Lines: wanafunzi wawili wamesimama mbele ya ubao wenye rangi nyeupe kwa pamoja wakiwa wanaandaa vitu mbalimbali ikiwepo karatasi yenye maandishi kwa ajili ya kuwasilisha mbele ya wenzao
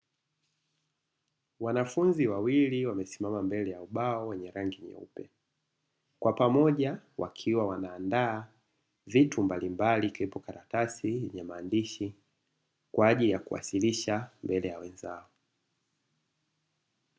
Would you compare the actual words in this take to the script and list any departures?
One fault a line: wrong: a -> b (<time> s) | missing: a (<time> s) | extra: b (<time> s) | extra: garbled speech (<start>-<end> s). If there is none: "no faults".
no faults